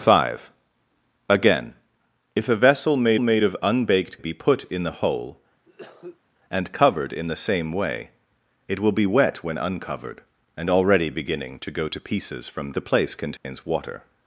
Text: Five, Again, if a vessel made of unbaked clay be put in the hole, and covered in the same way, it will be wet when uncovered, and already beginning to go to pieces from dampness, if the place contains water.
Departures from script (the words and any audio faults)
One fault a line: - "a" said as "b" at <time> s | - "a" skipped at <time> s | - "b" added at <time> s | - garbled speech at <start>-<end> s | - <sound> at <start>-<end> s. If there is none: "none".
- "made" added at 3.2 s
- "clay" skipped at 4.2 s
- cough at 5.7-6.2 s
- "dampness if" skipped at 12.7 s
- dropout at 13.4-13.4 s